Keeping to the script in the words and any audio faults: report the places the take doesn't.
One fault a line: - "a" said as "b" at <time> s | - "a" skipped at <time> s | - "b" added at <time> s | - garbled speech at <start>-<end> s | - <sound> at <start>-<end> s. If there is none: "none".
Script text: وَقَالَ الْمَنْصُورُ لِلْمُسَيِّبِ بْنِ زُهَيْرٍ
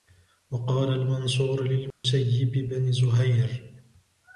- dropout at 1.9-2.0 s